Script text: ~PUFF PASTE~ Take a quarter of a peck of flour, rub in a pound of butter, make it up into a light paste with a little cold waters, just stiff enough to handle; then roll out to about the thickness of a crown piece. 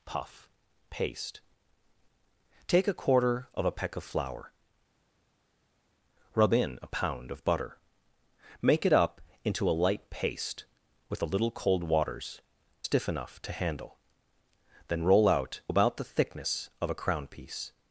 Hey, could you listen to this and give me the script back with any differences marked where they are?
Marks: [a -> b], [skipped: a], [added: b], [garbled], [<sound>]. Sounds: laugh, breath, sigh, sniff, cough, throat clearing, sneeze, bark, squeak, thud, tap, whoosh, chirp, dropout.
~PUFF PASTE~ Take a quarter of a peck of flour, rub in a pound of butter, make it up into a light paste with a little cold waters, [skipped: just] stiff enough to handle; then roll out [skipped: to] about the thickness of a crown piece.